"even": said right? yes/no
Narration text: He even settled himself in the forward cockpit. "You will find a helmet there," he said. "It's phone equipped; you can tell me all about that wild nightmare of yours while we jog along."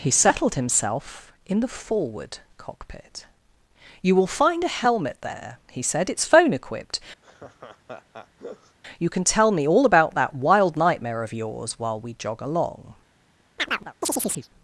no